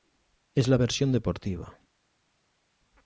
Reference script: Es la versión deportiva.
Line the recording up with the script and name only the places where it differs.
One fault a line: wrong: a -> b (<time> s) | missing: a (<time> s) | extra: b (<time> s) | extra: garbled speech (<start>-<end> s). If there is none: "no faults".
no faults